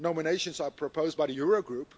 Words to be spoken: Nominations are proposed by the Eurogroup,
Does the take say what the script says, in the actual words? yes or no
yes